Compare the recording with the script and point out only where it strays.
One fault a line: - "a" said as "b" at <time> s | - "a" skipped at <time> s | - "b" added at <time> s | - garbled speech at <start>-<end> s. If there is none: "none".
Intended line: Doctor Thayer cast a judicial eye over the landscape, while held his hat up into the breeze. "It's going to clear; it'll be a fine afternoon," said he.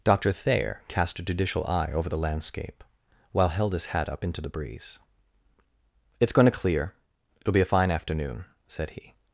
none